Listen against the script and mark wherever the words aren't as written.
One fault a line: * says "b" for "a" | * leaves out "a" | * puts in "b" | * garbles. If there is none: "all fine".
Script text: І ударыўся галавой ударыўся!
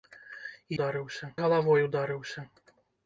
all fine